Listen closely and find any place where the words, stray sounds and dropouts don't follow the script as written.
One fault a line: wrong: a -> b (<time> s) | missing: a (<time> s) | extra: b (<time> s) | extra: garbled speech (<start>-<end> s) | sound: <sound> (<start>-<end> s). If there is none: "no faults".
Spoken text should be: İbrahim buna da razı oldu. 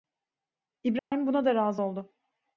sound: dropout (1.0-1.1 s)